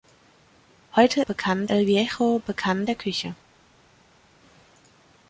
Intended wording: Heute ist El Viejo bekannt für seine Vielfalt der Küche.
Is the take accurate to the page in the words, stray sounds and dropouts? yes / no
no